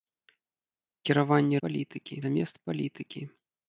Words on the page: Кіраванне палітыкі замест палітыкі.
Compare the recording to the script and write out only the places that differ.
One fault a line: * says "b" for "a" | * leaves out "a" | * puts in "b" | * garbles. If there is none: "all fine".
all fine